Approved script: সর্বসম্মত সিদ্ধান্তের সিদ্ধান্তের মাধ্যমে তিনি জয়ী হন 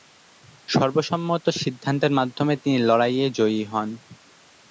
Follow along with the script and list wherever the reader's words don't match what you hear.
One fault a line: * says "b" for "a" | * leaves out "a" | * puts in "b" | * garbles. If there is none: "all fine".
* leaves out "সিদ্ধান্তের"
* puts in "লড়াইয়ে"